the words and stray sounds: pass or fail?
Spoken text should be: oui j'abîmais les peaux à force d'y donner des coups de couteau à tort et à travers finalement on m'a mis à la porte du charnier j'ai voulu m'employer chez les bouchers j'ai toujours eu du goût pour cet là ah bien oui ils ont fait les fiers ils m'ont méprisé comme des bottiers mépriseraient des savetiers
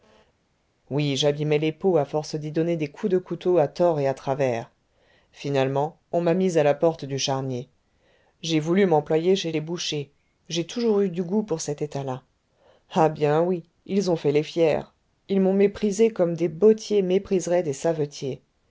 fail